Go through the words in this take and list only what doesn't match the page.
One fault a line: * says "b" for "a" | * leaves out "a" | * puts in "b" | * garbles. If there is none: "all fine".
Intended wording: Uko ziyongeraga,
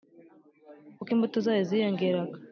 * puts in "imbuto zayo"